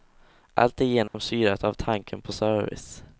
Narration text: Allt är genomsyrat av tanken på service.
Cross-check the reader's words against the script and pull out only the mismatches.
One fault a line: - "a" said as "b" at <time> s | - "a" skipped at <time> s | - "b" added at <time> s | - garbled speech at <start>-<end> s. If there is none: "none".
none